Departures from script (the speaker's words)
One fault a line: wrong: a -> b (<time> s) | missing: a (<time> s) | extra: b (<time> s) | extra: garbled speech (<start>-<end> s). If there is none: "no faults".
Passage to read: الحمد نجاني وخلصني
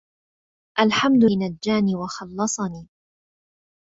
no faults